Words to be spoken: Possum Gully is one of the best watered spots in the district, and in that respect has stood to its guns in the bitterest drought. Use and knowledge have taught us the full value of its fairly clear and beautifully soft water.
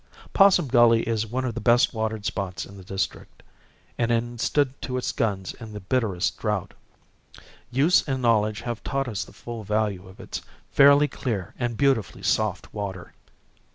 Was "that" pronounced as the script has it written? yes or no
no